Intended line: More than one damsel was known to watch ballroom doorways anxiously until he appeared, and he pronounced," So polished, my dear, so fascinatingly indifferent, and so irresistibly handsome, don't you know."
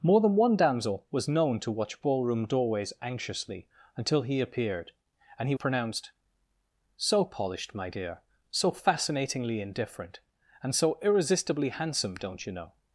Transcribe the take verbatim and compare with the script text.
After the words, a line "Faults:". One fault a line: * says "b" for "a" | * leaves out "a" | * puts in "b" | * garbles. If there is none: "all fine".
More than one damsel was known to watch ballroom doorways anxiously until he appeared, and he pronounced," So polished, my dear, so fascinatingly indifferent, and so irresistibly handsome, don't you know."
Faults:
all fine